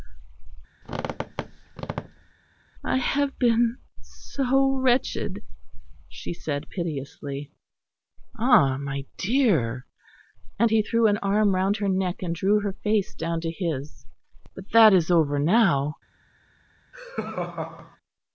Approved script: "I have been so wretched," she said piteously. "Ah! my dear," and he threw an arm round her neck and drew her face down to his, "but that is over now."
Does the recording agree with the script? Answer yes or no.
yes